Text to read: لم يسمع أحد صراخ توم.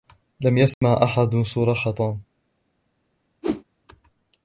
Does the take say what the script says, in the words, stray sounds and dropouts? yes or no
no